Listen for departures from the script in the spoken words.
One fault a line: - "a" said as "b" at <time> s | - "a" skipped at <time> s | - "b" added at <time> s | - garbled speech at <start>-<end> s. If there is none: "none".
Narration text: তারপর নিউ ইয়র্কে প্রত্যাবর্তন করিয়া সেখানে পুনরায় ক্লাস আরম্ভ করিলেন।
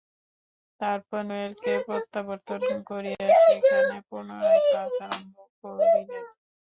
- "নিউ" skipped at 1.2 s